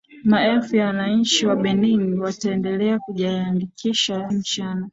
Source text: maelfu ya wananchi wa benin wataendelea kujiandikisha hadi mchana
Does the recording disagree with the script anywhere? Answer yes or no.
yes